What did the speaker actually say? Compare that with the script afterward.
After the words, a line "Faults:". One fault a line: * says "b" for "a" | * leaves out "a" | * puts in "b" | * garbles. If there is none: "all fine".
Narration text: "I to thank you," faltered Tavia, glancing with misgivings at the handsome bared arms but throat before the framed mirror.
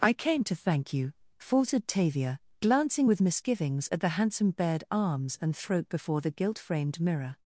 "I came to thank you," faltered Tavia, glancing with misgivings at the handsome bared arms and throat before the gilt framed mirror.
Faults:
* puts in "came"
* says "and" for "but"
* puts in "gilt"